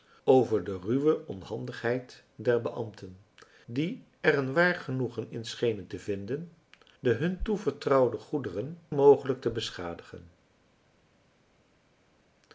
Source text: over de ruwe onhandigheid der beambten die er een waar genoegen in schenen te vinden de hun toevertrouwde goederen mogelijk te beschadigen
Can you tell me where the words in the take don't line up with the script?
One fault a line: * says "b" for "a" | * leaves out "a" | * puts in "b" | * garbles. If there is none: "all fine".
all fine